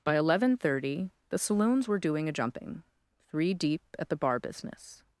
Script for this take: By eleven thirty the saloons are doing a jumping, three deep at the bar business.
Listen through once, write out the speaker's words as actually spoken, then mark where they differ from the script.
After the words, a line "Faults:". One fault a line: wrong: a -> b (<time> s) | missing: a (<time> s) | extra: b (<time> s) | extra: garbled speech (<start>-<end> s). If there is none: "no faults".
By eleven thirty the saloons were doing a jumping, three deep at the bar business.
Faults:
wrong: are -> were (1.9 s)